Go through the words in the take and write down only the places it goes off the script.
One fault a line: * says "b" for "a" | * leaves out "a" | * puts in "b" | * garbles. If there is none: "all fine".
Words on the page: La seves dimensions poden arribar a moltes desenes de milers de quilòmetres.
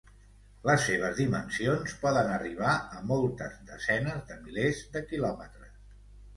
* says "Les" for "La"